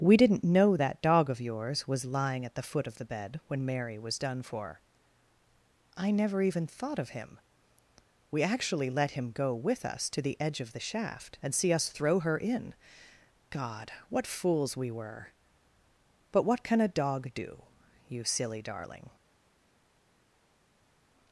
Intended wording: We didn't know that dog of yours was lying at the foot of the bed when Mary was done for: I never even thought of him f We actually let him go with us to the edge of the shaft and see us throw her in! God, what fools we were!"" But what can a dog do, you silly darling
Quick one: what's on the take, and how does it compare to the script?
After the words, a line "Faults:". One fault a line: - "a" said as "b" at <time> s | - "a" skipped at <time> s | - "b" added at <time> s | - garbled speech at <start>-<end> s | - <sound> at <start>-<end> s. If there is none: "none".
We didn't know that dog of yours was lying at the foot of the bed when Mary was done for: I never even thought of him We actually let him go with us to the edge of the shaft and see us throw her in! God, what fools we were!"" But what can a dog do, you silly darling
Faults:
- "f" skipped at 7.4 s